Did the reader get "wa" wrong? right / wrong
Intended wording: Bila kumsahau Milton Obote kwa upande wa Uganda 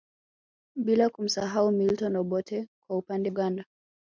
wrong